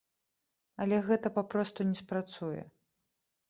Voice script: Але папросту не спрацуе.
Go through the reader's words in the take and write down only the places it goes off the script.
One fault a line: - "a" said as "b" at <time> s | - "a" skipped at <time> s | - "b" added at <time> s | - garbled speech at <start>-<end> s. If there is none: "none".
- "гэта" added at 1.1 s